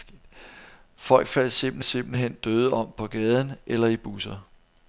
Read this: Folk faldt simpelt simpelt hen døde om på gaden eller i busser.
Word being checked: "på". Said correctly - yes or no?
yes